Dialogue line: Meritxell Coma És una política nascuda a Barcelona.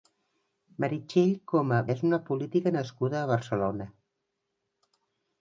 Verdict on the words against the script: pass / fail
pass